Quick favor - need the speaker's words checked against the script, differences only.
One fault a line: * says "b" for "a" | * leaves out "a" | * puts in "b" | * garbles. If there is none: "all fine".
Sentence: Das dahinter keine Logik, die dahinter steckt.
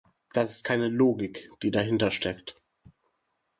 * says "ist" for "dahinter"